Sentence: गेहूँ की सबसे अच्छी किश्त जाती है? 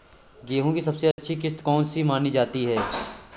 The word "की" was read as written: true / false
true